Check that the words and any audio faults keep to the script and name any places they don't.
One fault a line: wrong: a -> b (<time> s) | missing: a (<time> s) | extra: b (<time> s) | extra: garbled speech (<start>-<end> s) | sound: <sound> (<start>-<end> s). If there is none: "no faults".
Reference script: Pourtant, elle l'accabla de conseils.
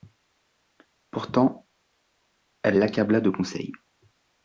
no faults